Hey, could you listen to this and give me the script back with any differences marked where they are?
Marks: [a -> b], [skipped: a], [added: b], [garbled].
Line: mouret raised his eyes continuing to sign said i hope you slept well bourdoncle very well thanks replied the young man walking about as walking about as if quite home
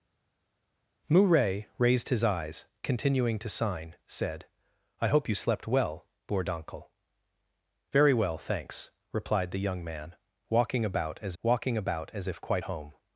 mouret raised his eyes continuing to sign said i hope you slept well bourdoncle very well thanks replied the young man walking about as walking about as if quite home